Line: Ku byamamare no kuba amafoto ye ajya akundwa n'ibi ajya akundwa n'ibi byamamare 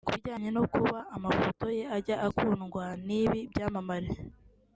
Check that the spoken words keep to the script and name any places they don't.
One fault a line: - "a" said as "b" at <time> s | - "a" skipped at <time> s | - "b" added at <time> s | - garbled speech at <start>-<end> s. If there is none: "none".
- "byamamare" said as "bijyanye" at 0.1 s
- "ajya akundwa n'ibi" skipped at 3.4 s